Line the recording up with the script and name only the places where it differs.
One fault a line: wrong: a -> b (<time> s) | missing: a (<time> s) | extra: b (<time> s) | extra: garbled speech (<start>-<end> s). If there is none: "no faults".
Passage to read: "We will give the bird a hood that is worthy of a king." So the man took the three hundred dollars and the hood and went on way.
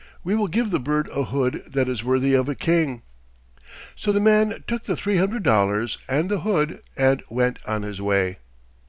extra: his (7.8 s)